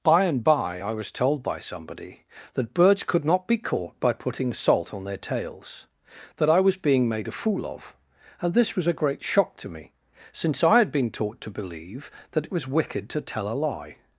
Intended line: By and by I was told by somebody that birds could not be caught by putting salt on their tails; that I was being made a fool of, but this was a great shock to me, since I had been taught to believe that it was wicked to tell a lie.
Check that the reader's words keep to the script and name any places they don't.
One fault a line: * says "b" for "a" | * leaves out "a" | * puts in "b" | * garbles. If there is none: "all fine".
* says "and" for "but"